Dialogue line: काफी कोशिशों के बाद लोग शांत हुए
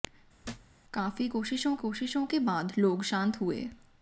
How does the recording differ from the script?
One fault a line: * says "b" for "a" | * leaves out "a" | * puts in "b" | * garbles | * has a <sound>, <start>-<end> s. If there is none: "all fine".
* has a thud, 0.4-0.8 s
* puts in "कोशिशों"